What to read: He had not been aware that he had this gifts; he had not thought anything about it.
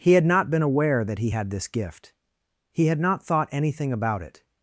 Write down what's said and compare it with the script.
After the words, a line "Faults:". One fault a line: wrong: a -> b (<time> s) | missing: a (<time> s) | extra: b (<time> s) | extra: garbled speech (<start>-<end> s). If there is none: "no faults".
He had not been aware that he had this gift; he had not thought anything about it.
Faults:
wrong: gifts -> gift (1.7 s)